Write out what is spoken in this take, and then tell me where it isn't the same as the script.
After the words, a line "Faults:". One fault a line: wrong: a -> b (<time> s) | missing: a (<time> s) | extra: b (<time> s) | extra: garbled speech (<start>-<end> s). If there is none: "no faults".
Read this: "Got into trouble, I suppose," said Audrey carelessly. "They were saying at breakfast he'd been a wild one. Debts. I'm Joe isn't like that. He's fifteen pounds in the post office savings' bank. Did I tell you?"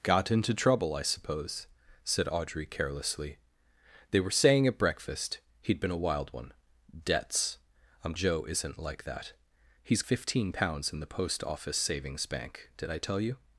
"Got into trouble, I suppose," said Audrey carelessly. "They were saying at breakfast he'd been a wild one. Debts. I'm Joe isn't like that. He's fifteen pounds in the post office savings' bank. Did I tell you?"
Faults:
no faults